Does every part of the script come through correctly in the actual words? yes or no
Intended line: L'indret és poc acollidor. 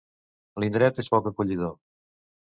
yes